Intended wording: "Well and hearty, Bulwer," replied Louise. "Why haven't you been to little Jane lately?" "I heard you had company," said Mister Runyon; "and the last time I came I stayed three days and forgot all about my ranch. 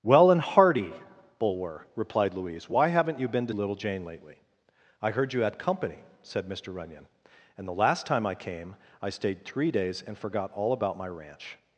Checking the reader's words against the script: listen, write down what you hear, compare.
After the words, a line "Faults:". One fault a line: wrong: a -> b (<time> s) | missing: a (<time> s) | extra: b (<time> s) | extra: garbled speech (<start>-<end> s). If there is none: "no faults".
"Well and hearty, Bulwer," replied Louise. "Why haven't you been to little Jane lately?" "I heard you had company," said Mister Runyon; "and the last time I came I stayed three days and forgot all about my ranch.
Faults:
no faults